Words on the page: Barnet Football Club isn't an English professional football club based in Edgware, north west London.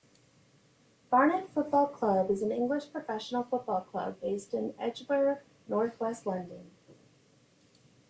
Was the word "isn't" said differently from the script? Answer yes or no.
yes